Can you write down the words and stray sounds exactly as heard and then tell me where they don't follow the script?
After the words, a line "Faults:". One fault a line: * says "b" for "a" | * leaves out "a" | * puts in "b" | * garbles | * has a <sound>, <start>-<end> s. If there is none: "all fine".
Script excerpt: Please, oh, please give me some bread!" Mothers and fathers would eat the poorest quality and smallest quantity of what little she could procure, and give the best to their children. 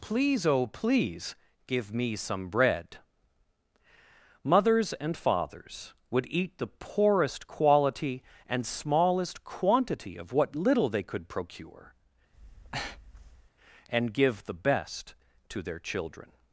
Please, oh, please give me some bread!" Mothers and fathers would eat the poorest quality and smallest quantity of what little they could procure, and give the best to their children.
Faults:
* says "they" for "she"
* has a breath, 12.3-13.5 s